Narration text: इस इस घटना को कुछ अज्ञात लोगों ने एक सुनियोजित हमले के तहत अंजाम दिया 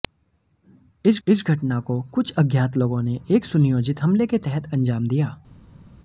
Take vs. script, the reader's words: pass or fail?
pass